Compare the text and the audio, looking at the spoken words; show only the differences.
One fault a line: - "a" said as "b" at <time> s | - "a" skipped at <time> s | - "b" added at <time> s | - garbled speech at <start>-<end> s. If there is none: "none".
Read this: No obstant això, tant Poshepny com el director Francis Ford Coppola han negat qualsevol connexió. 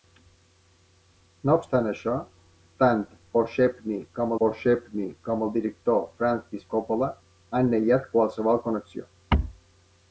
- "Poshepny com" added at 4.4 s
- "Ford" skipped at 6.6 s